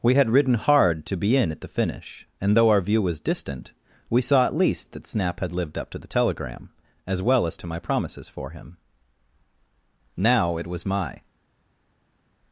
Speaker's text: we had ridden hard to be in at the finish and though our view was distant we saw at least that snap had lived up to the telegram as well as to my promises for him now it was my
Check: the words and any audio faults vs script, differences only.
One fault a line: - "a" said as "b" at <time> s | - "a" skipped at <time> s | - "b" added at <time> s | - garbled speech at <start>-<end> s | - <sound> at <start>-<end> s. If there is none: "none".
none